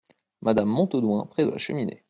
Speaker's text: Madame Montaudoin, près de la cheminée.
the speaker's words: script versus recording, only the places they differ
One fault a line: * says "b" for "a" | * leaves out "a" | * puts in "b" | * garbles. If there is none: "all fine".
all fine